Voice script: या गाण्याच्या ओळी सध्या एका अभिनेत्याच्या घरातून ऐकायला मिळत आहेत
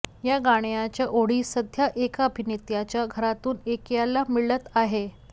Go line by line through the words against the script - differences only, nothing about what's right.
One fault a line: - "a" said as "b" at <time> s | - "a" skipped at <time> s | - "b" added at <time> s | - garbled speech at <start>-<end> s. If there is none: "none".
none